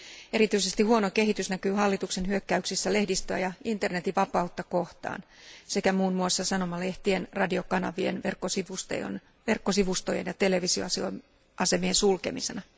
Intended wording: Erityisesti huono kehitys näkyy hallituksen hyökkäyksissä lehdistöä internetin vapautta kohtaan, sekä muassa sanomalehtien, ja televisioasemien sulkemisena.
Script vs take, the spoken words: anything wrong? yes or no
yes